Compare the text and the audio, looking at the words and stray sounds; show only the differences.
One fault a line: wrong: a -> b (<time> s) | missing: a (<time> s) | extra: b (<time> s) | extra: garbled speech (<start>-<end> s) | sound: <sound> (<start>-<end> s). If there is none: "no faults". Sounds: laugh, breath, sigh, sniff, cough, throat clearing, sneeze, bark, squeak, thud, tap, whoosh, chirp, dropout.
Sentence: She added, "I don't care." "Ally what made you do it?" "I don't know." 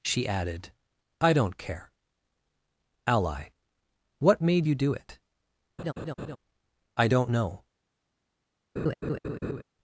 sound: laugh (5.8-6.4 s)
sound: laugh (8.8-9.6 s)